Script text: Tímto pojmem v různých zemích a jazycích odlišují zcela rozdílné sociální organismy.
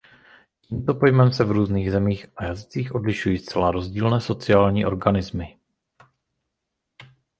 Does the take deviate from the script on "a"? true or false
false